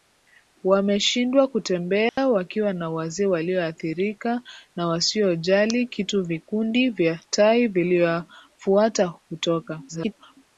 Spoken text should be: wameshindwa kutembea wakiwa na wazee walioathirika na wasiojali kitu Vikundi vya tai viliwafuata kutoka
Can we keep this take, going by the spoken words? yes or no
no